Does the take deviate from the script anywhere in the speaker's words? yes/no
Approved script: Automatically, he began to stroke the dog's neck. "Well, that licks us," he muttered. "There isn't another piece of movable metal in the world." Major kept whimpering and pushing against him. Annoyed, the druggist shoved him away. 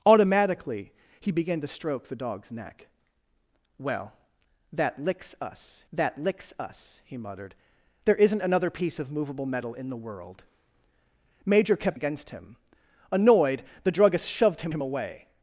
yes